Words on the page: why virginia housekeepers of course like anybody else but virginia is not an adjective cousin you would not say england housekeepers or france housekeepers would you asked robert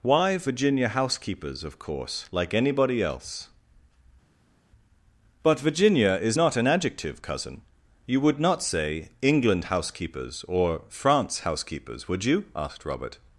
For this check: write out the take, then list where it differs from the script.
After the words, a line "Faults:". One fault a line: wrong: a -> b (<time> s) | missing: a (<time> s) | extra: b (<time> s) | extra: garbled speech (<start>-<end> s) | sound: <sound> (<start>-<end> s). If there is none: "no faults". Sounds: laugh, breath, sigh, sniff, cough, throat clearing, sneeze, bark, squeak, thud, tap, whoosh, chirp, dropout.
why virginia housekeepers of course like anybody else but virginia is not an adjective cousin you would not say england housekeepers or france housekeepers would you asked robert
Faults:
no faults